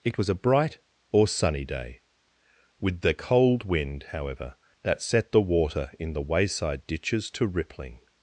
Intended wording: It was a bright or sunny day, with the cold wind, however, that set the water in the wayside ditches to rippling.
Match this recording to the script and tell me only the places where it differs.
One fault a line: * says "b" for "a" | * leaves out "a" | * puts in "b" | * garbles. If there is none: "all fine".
all fine